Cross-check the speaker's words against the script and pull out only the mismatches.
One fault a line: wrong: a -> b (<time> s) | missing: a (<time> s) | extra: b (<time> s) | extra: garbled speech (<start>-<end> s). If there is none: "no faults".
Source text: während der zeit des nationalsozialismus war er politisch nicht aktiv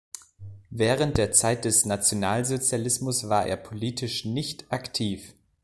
no faults